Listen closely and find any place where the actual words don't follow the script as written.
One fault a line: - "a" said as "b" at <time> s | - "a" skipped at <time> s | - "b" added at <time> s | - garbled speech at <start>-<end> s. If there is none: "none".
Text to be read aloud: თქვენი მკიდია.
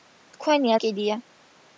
none